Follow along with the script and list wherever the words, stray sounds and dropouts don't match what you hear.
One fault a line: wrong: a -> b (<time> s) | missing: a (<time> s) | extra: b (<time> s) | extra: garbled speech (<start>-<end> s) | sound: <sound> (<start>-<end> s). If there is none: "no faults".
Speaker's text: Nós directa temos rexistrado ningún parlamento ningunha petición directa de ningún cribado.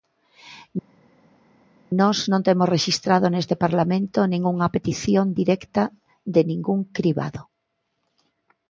wrong: directa -> non (2.3 s)
wrong: ningún -> neste (3.3 s)